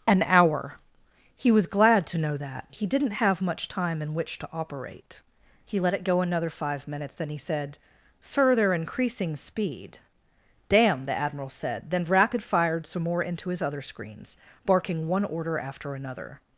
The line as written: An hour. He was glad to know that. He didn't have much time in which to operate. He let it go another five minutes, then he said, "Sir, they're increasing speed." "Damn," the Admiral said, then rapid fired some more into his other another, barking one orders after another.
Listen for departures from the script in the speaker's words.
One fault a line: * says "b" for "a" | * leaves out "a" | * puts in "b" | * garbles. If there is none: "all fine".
* says "screens" for "another"
* says "order" for "orders"